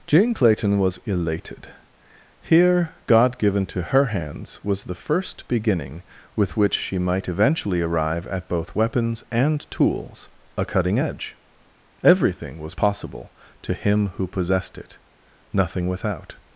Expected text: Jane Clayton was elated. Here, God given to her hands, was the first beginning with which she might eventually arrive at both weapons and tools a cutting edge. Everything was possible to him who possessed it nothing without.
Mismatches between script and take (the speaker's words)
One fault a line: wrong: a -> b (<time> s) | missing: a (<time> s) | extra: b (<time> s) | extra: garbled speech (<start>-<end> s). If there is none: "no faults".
no faults